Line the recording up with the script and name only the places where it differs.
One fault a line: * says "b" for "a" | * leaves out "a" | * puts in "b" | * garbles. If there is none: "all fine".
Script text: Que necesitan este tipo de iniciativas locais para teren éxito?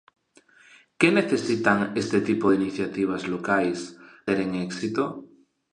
* leaves out "para"